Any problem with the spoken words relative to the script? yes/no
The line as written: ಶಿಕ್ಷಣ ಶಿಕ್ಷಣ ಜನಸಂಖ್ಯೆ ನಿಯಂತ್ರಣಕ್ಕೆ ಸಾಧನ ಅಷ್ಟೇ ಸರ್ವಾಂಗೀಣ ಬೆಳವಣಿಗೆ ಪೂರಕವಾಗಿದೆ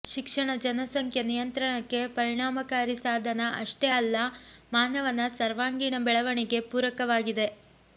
yes